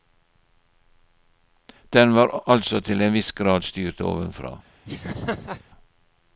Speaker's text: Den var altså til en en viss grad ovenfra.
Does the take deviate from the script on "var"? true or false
false